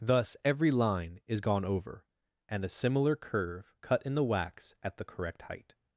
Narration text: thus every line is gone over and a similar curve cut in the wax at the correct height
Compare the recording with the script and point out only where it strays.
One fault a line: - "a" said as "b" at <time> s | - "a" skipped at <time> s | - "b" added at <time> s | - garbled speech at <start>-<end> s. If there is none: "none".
none